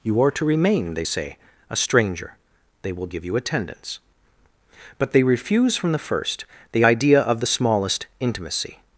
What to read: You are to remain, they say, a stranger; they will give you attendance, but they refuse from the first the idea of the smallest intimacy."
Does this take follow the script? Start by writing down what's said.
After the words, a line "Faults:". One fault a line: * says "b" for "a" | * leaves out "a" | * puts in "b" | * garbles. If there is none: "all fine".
You are to remain, they say, a stranger; they will give you attendance, but they refuse from the first the idea of the smallest intimacy."
Faults:
all fine